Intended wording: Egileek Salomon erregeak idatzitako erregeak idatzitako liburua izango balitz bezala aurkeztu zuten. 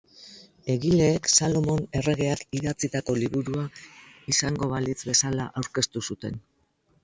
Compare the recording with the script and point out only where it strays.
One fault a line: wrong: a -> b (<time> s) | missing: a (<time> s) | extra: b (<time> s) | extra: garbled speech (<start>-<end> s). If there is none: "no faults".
missing: erregeak idatzitako (3.2 s)